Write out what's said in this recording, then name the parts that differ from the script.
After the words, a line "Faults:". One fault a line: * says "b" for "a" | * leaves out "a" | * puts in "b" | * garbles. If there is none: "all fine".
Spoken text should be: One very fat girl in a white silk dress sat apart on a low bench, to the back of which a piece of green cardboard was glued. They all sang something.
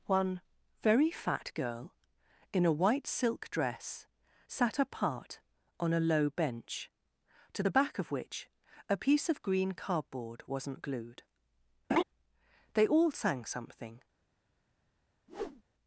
One very fat girl in a white silk dress sat apart on a low bench, to the back of which a piece of green cardboard wasn't glued. They all sang something.
Faults:
* says "wasn't" for "was"